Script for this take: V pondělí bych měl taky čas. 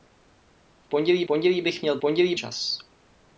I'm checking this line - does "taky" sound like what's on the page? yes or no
no